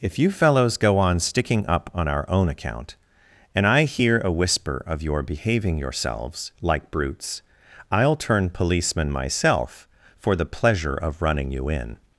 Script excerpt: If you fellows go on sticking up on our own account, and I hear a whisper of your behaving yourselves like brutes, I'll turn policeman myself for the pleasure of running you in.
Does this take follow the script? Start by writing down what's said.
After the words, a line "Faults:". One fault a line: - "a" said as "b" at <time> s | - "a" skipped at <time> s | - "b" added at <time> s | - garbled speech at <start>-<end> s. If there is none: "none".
If you fellows go on sticking up on our own account, and I hear a whisper of your behaving yourselves like brutes, I'll turn policeman myself for the pleasure of running you in.
Faults:
none